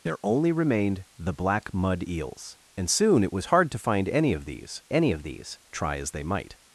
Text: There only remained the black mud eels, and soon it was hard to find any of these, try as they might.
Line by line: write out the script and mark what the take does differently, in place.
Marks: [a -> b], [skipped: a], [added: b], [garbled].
There only remained the black mud eels, and soon it was hard to find any of these, [added: any of these] try as they might.